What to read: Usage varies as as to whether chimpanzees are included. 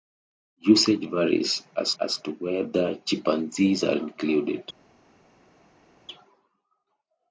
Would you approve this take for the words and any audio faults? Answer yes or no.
yes